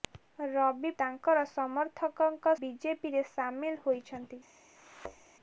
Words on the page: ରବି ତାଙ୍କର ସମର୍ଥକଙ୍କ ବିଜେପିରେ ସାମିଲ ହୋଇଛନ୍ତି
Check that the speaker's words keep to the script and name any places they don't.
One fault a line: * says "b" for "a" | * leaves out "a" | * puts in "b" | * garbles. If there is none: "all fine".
all fine